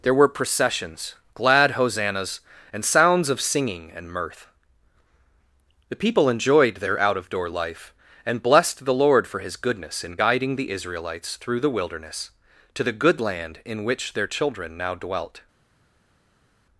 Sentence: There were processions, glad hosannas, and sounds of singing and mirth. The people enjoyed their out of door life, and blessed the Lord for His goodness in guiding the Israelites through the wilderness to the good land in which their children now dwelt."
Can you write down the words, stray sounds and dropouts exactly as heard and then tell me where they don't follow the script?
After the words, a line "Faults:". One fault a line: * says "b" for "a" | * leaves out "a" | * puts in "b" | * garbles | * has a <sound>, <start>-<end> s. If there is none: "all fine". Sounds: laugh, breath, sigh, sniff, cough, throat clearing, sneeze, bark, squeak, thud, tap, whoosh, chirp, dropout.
There were processions, glad hosannas, and sounds of singing and mirth. The people enjoyed their out of door life, and blessed the Lord for His goodness in guiding the Israelites through the wilderness to the good land in which their children now dwelt."
Faults:
all fine